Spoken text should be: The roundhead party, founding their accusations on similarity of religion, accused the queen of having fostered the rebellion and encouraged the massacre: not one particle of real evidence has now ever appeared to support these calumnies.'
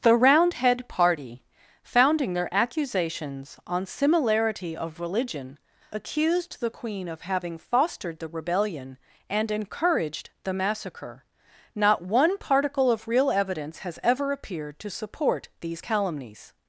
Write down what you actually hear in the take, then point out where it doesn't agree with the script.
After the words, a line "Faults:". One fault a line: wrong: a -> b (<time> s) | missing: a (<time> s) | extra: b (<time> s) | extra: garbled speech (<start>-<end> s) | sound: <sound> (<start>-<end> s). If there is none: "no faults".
The roundhead party, founding their accusations on similarity of religion, accused the queen of having fostered the rebellion and encouraged the massacre: not one particle of real evidence has ever appeared to support these calumnies.'
Faults:
missing: now (14.0 s)